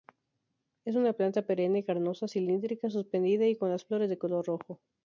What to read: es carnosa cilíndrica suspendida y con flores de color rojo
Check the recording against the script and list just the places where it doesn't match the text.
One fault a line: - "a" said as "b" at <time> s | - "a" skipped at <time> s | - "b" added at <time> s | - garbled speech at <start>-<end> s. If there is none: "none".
- "una planta perenne" added at 0.9 s
- "las" added at 3.7 s